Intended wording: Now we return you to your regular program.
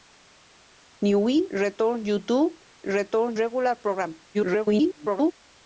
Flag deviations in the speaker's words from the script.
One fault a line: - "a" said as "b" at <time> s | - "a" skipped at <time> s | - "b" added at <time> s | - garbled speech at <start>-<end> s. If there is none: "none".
- "your" said as "return" at 2.8 s
- garbled speech at 4.3-5.3 s